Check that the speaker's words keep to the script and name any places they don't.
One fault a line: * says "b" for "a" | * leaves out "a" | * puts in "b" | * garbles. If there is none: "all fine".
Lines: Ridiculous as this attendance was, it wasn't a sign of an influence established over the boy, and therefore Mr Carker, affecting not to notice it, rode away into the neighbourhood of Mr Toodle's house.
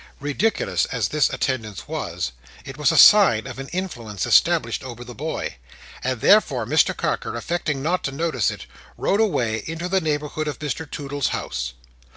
* says "was" for "wasn't"